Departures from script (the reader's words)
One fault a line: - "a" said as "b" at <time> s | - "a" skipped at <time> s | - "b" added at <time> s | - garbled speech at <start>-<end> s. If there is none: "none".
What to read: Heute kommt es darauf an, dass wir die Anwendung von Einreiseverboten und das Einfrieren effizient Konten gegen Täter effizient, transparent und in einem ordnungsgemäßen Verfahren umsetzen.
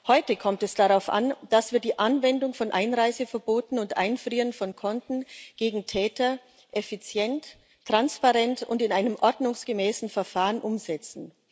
- "effizient" said as "von" at 4.5 s